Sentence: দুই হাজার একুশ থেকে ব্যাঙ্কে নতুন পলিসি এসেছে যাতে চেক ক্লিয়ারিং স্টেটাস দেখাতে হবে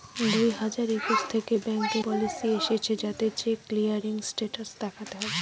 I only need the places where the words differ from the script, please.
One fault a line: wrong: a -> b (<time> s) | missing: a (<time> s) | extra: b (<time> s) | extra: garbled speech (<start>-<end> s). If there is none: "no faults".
missing: নতুন (2.0 s)